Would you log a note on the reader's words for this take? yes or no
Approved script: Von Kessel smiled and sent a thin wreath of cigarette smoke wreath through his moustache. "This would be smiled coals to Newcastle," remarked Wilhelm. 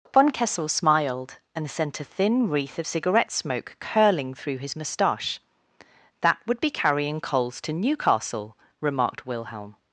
yes